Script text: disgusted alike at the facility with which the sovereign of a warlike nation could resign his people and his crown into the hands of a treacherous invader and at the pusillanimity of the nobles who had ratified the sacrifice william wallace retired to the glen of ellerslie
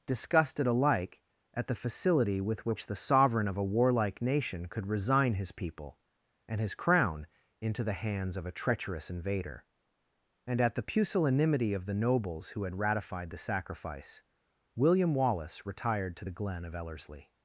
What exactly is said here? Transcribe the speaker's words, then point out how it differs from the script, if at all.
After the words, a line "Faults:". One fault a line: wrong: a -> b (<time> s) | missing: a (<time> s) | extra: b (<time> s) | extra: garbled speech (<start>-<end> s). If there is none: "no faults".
disgusted alike at the facility with which the sovereign of a warlike nation could resign his people and his crown into the hands of a treacherous invader and at the pusillanimity of the nobles who had ratified the sacrifice william wallace retired to the glen of ellerslie
Faults:
no faults